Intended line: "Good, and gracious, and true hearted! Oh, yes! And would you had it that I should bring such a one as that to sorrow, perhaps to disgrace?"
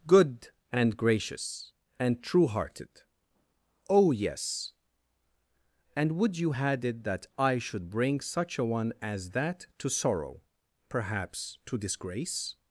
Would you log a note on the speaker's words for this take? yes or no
no